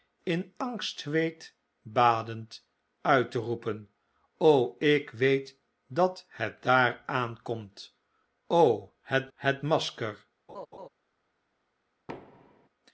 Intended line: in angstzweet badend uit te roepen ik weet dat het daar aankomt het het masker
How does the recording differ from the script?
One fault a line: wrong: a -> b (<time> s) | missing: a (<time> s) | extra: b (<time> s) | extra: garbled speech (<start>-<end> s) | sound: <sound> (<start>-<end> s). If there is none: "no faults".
sound: laugh (10.5-10.9 s)
sound: thud (12.1-12.7 s)